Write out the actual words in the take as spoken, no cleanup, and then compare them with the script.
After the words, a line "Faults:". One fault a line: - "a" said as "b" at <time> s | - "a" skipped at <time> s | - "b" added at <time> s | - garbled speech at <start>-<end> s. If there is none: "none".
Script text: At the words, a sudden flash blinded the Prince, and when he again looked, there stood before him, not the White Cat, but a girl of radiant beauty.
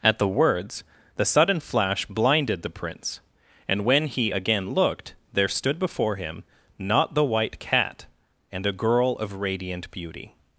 At the words, the sudden flash blinded the Prince, and when he again looked, there stood before him, not the White Cat, and a girl of radiant beauty.
Faults:
- "a" said as "the" at 1.1 s
- "but" said as "and" at 8.5 s